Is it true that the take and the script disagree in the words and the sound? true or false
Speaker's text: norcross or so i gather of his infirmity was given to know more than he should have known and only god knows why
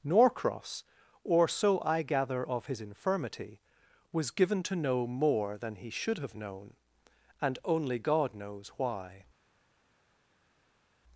false